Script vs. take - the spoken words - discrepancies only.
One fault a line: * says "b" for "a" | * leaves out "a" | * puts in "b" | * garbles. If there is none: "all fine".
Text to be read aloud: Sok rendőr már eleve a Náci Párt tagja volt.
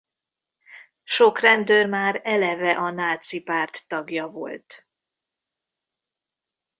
all fine